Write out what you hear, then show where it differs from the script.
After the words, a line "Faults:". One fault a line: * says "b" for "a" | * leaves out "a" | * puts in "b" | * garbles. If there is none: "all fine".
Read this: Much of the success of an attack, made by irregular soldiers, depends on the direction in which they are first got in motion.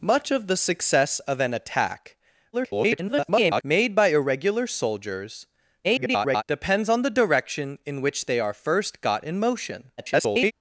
Much of the success of an attack, [garbled] made by irregular soldiers, [garbled] depends on the direction in which they are first got in motion. [garbled]
Faults:
* garbles
* garbles
* garbles